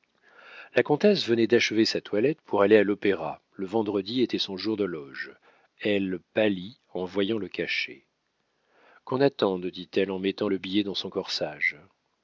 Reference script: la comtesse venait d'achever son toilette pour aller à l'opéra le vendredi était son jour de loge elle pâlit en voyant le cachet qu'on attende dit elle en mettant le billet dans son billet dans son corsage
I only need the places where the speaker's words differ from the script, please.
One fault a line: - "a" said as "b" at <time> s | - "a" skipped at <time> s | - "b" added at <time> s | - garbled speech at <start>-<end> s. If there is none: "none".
- "son" said as "sa" at 1.9 s
- "billet dans son" skipped at 11.1 s